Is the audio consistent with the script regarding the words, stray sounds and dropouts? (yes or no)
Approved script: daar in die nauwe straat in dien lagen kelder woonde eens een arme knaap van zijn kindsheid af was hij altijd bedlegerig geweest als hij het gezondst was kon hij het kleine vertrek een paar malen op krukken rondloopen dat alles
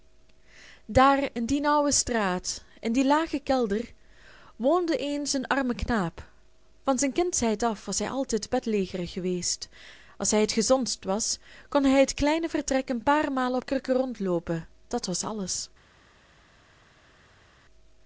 no